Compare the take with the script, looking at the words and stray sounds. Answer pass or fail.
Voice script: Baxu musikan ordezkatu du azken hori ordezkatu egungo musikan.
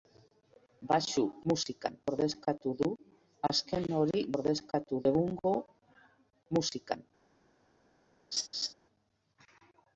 fail